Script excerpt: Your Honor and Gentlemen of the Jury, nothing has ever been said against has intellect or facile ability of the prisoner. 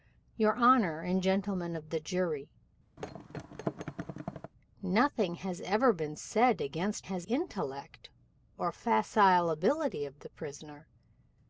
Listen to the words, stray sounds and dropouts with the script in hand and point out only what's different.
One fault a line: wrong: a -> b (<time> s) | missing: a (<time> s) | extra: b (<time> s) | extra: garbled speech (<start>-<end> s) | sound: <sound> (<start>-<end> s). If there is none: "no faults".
sound: thud (3.0-4.5 s)